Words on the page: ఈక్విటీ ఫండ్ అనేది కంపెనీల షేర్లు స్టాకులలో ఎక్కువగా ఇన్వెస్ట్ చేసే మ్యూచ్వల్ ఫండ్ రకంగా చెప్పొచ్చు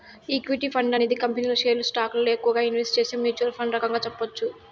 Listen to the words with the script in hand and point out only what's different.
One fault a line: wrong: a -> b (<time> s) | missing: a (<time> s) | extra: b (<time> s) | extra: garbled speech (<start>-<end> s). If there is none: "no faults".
no faults